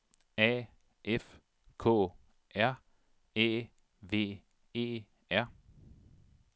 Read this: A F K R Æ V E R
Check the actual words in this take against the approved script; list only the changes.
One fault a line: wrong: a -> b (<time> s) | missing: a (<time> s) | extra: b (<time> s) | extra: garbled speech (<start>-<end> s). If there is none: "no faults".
no faults